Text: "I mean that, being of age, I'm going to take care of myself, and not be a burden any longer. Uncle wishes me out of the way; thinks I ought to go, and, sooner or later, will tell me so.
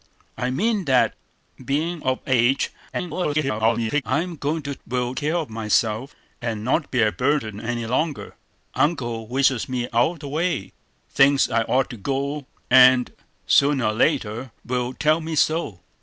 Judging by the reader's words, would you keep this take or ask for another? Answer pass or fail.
fail